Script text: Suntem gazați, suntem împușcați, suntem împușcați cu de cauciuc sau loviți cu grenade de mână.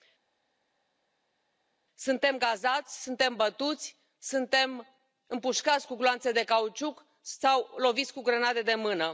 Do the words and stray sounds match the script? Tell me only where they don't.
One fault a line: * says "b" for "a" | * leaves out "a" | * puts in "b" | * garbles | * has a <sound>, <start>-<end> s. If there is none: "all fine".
* says "bătuți" for "împușcați"
* puts in "gloanțe"